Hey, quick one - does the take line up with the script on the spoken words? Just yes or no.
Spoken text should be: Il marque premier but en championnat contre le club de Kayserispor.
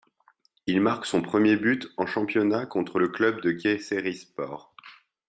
no